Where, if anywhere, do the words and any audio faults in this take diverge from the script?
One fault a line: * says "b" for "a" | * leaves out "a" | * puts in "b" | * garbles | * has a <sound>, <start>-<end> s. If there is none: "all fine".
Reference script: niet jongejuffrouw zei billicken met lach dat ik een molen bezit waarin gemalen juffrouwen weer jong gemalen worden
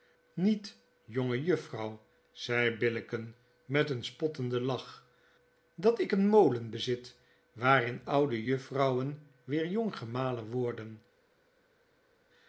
* puts in "een spottenden"
* says "oude" for "gemalen"